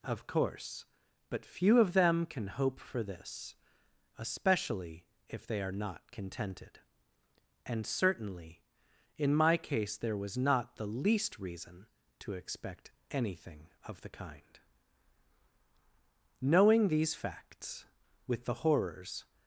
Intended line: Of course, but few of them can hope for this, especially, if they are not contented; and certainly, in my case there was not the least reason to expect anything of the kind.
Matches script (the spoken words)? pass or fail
fail